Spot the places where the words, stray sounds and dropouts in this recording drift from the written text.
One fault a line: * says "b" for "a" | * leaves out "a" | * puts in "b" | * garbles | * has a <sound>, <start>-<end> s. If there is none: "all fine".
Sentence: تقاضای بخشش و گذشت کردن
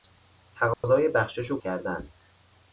* has a dropout, 0.7-0.8 s
* leaves out "گذشت"